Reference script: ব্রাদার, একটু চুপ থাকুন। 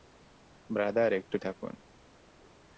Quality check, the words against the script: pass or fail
fail